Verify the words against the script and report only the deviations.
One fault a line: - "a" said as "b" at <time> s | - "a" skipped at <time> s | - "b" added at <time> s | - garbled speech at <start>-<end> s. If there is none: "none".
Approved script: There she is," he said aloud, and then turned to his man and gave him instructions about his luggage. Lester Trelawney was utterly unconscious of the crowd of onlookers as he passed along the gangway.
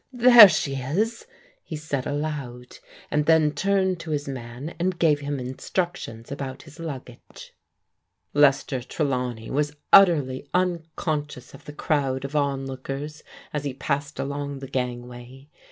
none